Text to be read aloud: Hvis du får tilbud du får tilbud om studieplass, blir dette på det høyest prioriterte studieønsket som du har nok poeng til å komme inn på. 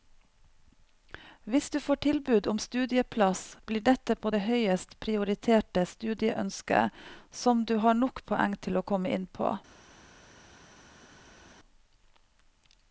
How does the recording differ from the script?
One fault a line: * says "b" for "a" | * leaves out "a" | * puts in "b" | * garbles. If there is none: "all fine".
* leaves out "du får tilbud"